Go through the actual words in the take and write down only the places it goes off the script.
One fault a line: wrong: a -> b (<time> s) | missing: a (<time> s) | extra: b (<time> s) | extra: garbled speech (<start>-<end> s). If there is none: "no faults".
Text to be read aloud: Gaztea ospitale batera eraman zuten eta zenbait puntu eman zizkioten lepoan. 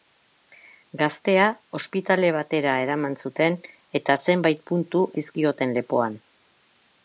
missing: eman (5.0 s)